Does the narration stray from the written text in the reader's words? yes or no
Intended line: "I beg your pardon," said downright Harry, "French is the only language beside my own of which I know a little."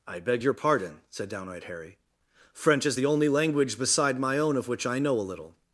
no